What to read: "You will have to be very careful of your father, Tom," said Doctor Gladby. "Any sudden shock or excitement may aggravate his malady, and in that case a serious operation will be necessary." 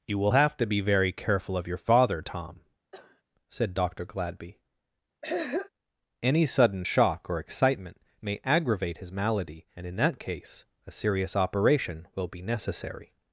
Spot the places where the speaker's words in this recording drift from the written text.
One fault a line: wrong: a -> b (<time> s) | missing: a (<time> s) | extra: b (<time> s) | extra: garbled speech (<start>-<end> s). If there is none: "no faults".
no faults